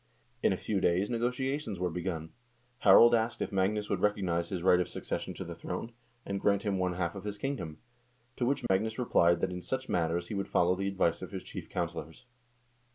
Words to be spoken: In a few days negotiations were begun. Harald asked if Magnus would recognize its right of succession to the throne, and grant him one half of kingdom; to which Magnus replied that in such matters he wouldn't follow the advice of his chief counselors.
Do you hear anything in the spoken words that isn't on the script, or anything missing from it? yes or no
yes